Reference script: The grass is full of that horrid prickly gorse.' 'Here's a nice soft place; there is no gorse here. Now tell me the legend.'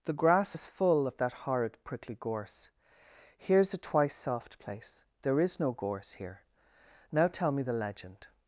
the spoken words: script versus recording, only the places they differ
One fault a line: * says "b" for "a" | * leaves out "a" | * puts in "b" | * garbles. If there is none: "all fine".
* says "twice" for "nice"